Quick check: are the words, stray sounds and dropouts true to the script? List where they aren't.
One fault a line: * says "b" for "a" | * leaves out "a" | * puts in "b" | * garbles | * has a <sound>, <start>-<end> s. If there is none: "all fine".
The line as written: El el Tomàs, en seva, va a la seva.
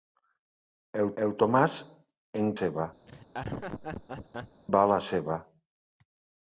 * has a laugh, 3.1-4.6 s